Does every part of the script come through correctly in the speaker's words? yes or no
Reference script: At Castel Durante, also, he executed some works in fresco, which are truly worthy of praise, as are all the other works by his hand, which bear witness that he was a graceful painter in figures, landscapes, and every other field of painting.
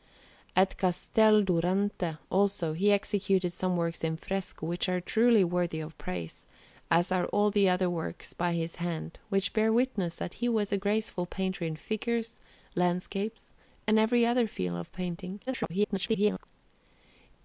no